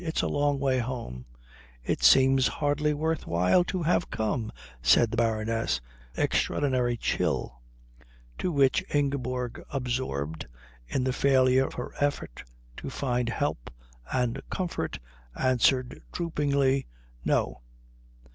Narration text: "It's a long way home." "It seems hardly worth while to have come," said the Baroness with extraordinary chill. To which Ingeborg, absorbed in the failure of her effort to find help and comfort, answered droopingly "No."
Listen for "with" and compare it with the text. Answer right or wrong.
wrong